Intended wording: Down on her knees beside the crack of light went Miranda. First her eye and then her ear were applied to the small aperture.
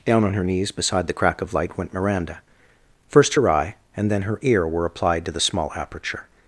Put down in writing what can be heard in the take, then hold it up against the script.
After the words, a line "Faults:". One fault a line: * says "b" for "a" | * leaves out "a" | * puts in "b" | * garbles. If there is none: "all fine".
Down on her knees beside the crack of light went Miranda. First her eye and then her ear were applied to the small aperture.
Faults:
all fine